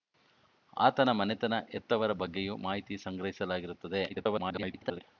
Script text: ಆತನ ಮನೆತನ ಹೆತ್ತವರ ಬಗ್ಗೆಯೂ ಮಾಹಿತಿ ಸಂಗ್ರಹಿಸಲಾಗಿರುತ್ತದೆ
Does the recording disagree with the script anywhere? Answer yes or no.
yes